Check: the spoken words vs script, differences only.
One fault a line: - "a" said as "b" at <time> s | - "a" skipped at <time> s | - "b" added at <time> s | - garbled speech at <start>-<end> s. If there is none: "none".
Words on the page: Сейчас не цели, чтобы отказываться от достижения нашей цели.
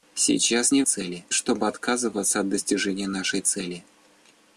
none